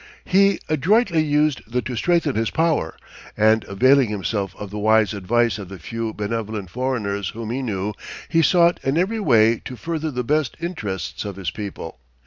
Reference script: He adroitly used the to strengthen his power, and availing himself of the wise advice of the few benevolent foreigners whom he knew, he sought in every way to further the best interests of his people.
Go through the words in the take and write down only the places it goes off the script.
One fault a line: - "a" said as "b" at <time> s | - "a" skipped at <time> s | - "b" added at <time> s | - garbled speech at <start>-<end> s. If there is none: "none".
none